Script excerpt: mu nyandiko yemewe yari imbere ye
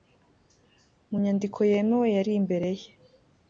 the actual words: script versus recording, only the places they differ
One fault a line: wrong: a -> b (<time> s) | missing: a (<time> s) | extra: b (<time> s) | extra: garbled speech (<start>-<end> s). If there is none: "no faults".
no faults